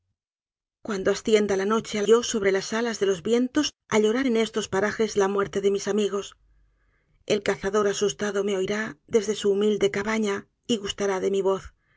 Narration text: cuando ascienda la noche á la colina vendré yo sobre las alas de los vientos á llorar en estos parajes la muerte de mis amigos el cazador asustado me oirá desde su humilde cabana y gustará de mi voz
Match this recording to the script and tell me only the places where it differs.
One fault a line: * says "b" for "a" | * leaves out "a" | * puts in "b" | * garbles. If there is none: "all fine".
* leaves out "la colina vendré"